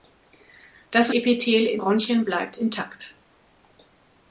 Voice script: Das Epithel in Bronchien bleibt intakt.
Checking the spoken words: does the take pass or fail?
pass